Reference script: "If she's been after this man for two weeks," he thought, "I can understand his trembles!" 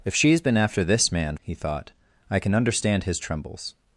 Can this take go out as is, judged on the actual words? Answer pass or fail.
fail